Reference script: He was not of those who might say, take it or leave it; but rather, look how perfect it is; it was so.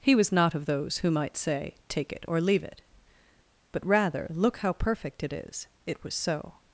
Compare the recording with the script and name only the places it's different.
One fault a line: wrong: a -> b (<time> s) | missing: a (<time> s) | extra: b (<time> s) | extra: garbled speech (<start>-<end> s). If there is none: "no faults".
no faults